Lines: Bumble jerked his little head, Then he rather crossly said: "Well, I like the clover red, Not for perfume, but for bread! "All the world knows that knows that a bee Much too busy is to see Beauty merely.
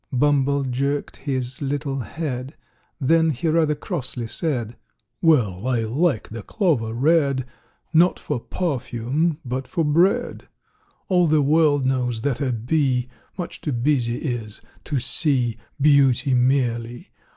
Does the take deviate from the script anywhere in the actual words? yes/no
yes